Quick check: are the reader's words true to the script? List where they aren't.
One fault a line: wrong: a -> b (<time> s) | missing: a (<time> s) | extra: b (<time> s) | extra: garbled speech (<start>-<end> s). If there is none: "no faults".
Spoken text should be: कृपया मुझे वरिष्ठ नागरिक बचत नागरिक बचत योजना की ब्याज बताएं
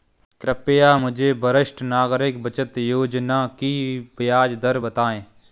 missing: नागरिक बचत (2.8 s)
extra: दर (4.5 s)